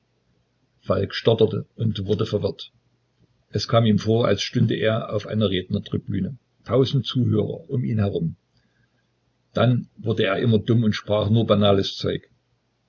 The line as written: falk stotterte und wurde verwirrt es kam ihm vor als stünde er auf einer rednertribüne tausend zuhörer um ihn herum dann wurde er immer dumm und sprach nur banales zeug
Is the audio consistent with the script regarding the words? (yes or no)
yes